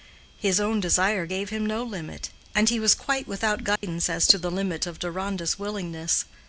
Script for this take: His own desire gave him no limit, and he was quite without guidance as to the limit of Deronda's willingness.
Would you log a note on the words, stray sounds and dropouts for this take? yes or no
yes